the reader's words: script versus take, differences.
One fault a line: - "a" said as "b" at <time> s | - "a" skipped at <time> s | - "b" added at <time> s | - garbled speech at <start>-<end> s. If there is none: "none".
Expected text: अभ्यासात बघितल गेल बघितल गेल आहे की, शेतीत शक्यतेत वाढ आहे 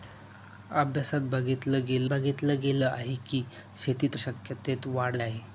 none